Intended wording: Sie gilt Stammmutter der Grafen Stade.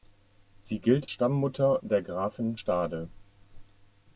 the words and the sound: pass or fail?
pass